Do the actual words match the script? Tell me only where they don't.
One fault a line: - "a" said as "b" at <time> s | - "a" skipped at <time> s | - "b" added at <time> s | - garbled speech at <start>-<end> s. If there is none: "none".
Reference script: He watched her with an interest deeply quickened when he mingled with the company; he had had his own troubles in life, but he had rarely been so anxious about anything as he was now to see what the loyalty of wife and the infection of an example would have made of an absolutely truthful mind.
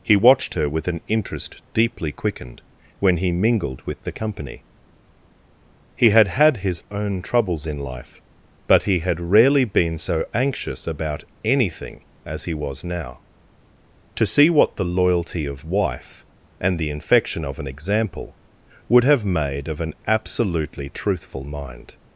none